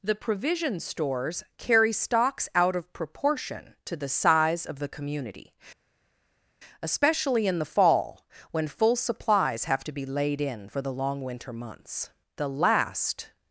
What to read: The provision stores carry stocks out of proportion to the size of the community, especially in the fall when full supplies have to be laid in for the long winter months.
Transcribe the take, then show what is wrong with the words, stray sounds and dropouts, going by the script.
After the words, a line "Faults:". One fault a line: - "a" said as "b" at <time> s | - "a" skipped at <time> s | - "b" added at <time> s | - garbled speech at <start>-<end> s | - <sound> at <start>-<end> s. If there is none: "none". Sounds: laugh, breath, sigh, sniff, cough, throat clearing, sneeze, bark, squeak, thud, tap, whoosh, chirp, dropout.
The provision stores carry stocks out of proportion to the size of the community, especially in the fall when full supplies have to be laid in for the long winter months. The last
Faults:
- "The last" added at 12.4 s